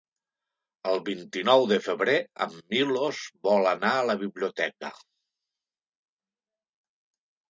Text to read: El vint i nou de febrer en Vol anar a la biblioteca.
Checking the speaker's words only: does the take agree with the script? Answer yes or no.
no